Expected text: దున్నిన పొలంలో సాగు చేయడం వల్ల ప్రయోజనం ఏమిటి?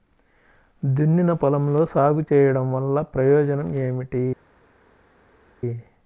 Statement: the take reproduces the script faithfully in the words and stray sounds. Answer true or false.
true